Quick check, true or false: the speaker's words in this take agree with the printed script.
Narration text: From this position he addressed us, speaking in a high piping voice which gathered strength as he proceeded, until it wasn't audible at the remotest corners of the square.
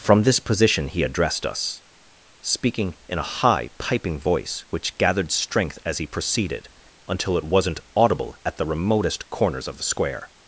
true